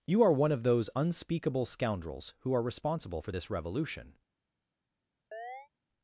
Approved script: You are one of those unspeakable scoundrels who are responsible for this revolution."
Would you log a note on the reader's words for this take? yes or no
no